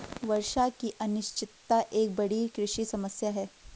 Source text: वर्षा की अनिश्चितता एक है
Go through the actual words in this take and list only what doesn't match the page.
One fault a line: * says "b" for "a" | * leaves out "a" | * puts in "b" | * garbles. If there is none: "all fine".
* puts in "बड़ी कृषि समस्या"